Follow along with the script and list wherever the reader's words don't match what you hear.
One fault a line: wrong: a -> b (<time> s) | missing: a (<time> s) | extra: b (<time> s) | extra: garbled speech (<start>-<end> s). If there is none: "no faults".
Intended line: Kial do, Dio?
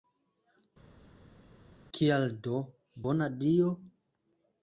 extra: bona (3.1 s)